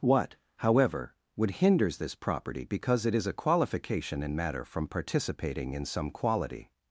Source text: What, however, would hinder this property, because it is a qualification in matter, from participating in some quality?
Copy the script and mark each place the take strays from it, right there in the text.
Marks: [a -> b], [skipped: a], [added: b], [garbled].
What, however, would [hinder -> hinders] this property, because it is a qualification in matter, from participating in some quality?